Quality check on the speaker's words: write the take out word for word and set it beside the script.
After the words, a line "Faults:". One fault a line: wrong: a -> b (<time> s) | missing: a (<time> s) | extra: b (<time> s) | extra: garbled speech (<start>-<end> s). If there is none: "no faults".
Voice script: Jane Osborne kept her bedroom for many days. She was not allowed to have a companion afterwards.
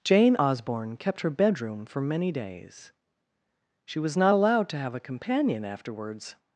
Jane Osborne kept her bedroom for many days. She was not allowed to have a companion afterwards.
Faults:
no faults